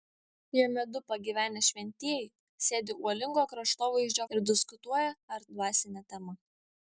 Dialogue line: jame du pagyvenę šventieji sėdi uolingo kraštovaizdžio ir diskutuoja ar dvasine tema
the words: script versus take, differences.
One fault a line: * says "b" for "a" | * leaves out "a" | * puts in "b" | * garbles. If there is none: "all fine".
all fine